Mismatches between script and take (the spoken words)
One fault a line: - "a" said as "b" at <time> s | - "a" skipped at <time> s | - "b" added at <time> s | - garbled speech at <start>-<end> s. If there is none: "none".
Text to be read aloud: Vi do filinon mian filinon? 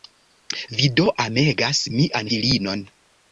- "filinon" said as "amegas" at 1.2 s